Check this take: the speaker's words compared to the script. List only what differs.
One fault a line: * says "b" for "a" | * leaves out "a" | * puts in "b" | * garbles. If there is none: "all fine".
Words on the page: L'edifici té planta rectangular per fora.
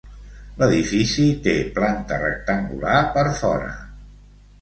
all fine